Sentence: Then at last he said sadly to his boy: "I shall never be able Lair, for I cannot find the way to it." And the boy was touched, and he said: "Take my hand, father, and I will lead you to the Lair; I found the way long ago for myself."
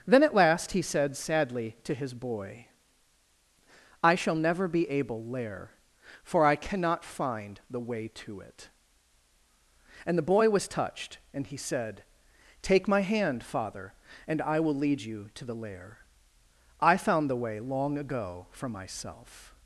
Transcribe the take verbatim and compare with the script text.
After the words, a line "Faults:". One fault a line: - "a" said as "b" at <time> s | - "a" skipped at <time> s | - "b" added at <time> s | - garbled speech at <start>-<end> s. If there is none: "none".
Then at last he said sadly to his boy: "I shall never be able Lair, for I cannot find the way to it." And the boy was touched, and he said: "Take my hand, father, and I will lead you to the Lair; I found the way long ago for myself."
Faults:
none